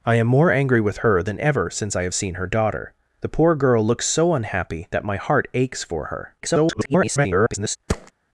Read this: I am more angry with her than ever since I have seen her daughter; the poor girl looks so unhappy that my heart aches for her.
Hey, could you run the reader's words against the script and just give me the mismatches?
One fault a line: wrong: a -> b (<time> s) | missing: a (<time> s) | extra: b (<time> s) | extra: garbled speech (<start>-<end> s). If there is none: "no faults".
extra: garbled speech (6.4-7.8 s)